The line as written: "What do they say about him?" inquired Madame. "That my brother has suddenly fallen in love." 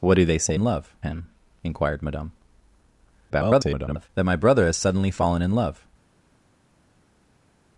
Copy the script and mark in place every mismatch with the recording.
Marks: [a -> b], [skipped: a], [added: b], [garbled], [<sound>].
"What do they say [about -> love] him?" inquired Madame. [garbled] "That my brother has suddenly fallen in love."